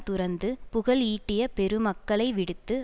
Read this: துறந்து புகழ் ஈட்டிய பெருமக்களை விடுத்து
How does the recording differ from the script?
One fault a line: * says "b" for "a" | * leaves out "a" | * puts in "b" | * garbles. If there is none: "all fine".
all fine